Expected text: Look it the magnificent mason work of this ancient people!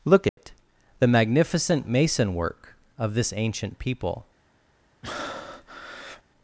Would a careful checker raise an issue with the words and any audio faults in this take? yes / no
yes